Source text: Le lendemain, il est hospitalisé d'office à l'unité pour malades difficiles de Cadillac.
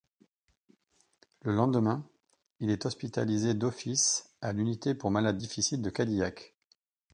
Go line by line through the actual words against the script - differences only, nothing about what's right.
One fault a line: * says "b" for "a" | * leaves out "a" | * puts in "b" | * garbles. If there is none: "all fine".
all fine